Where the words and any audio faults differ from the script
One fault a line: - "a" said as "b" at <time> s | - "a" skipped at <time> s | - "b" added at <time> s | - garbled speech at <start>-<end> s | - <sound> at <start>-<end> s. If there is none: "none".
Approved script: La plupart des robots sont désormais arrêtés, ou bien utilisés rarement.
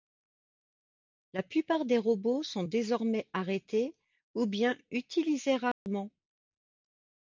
- dropout at 5.7-5.9 s